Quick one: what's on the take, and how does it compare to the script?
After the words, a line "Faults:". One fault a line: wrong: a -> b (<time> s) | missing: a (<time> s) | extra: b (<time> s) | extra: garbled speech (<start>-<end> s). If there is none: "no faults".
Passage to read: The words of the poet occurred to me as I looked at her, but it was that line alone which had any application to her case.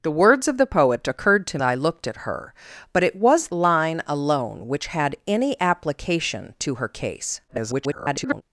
The words of the poet occurred to I looked at her, but it was line alone which had any application to her case. [garbled]
Faults:
missing: me as (1.6 s)
missing: that (3.5 s)
extra: garbled speech (7.5-8.4 s)